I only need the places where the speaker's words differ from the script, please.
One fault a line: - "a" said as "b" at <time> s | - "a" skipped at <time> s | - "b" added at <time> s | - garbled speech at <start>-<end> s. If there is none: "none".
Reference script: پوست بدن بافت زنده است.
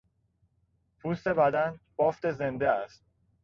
none